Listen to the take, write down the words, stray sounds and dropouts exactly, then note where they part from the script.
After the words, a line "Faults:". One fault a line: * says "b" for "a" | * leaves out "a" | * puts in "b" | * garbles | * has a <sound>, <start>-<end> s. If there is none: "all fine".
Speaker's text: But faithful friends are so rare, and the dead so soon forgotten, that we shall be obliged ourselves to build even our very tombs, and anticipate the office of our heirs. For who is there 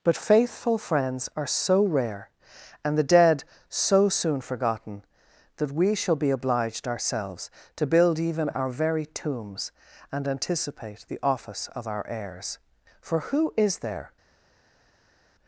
But faithful friends are so rare, and the dead so soon forgotten, that we shall be obliged ourselves to build even our very tombs, and anticipate the office of our heirs. For who is there
Faults:
all fine